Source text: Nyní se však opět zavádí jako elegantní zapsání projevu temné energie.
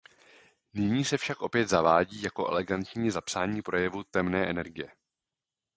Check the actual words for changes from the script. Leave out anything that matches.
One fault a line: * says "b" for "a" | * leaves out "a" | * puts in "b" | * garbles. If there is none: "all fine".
all fine